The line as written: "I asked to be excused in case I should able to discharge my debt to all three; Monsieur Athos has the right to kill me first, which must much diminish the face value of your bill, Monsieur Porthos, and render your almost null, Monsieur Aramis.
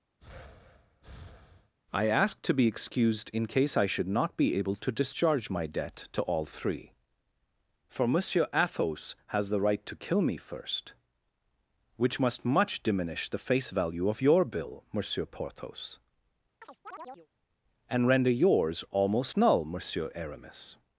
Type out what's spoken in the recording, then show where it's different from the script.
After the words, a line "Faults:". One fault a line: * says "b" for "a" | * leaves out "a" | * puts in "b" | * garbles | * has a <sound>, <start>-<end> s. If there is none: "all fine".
"I asked to be excused in case I should not be able to discharge my debt to all three; for Monsieur Athos has the right to kill me first, which must much diminish the face value of your bill, Monsieur Porthos, and render yours almost null, Monsieur Aramis.
Faults:
* has a breath, 0.2-1.7 s
* puts in "not be"
* puts in "for"
* has a chirp, 16.6-17.3 s
* says "yours" for "your"